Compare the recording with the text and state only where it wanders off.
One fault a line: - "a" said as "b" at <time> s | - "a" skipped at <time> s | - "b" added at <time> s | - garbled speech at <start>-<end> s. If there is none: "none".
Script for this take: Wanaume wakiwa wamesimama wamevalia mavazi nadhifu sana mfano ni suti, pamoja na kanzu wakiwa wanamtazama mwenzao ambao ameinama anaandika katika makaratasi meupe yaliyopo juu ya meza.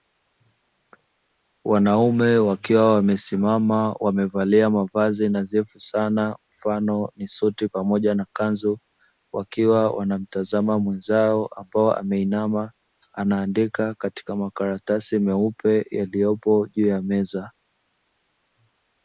none